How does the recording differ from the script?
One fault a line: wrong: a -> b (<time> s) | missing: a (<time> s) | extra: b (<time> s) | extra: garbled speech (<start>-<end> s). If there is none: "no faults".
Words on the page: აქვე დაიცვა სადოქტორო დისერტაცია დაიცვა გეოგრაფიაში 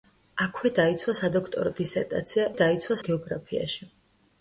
no faults